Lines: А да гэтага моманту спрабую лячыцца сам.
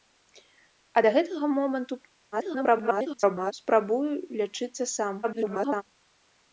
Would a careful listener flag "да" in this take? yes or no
no